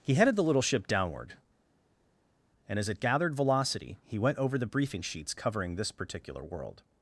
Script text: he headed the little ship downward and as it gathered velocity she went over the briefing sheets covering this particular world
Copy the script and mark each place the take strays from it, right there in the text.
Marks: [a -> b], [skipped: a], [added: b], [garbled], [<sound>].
he headed the little ship downward and as it gathered velocity [she -> he] went over the briefing sheets covering this particular world